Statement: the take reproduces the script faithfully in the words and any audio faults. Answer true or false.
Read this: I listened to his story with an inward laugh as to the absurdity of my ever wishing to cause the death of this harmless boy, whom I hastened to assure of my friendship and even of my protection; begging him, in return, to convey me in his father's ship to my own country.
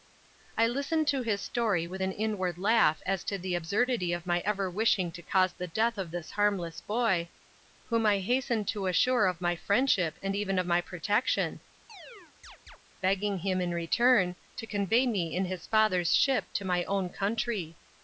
false